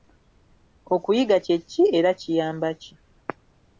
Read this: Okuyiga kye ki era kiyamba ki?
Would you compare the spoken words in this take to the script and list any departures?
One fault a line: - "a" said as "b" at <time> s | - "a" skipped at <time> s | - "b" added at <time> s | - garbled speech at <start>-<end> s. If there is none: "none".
none